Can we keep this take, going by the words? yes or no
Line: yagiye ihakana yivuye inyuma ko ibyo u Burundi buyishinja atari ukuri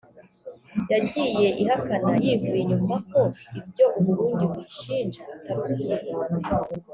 yes